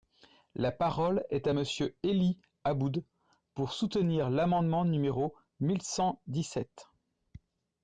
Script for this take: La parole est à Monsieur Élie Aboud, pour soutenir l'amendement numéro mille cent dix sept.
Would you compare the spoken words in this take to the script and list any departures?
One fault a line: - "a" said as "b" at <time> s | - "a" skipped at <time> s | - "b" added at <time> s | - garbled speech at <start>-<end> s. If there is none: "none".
none